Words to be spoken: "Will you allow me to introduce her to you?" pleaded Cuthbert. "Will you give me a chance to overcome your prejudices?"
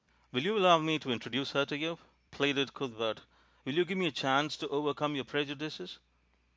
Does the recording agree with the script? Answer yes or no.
yes